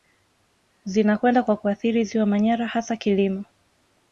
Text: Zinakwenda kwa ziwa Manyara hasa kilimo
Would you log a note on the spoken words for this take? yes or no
yes